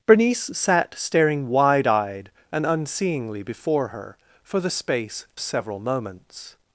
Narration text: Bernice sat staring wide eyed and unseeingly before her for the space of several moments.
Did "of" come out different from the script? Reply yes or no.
yes